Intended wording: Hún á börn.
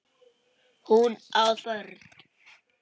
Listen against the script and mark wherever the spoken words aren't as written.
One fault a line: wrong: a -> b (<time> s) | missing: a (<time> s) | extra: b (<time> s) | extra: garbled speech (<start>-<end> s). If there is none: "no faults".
no faults